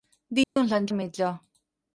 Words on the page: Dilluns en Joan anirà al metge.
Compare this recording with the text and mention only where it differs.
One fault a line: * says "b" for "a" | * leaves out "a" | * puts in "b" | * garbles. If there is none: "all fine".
* leaves out "Joan anirà"